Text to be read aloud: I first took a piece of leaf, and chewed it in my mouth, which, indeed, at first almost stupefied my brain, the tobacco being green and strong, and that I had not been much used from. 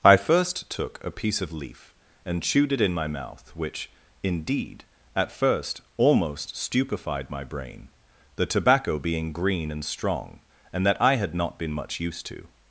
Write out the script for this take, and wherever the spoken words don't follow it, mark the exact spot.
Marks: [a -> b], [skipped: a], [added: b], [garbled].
I first took a piece of leaf, and chewed it in my mouth, which, indeed, at first almost stupefied my brain, the tobacco being green and strong, and that I had not been much used [from. -> to]